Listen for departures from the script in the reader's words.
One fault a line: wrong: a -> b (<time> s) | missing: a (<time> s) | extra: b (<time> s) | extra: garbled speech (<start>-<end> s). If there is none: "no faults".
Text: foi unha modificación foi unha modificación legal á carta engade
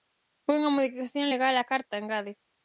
missing: foi unha modificación (1.3 s)